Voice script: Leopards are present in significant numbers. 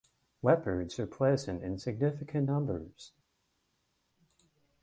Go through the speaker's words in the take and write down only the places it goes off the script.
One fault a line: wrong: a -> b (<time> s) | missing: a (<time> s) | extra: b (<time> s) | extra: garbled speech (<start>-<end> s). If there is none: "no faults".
no faults